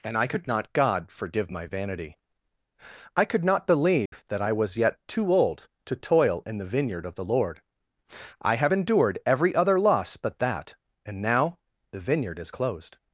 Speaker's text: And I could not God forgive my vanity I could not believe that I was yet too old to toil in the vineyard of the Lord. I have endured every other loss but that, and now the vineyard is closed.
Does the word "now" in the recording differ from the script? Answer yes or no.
no